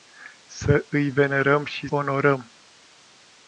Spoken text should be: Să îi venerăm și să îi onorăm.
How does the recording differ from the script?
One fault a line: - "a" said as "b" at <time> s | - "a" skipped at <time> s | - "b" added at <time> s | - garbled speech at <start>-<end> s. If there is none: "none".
- "să îi" skipped at 1.9 s